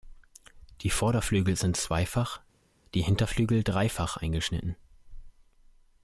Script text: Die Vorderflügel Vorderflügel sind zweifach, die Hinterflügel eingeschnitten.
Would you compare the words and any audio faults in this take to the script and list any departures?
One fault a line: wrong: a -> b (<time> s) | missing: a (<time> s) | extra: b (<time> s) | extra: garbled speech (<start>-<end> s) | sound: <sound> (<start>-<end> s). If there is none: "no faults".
missing: Vorderflügel (1.6 s)
extra: dreifach (3.6 s)